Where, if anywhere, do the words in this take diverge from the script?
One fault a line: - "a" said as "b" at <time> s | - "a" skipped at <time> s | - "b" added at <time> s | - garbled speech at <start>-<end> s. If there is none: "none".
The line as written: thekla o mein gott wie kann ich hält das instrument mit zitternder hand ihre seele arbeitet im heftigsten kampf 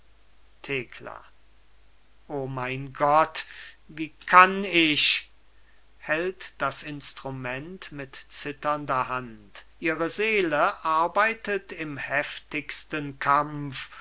none